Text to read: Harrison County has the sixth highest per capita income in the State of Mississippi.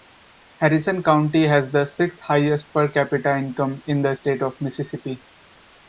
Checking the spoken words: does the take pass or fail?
pass